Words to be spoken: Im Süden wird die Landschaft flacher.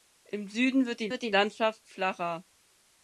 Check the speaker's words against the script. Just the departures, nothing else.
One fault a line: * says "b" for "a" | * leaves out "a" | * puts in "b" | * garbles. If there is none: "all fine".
* puts in "wird die"